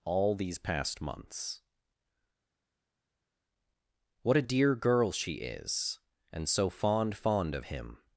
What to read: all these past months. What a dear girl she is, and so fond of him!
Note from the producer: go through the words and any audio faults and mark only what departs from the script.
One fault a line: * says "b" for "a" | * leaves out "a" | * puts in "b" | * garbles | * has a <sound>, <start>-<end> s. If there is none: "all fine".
* puts in "fond"